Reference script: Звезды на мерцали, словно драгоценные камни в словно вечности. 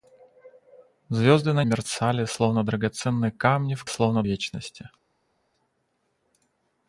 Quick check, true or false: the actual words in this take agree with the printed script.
true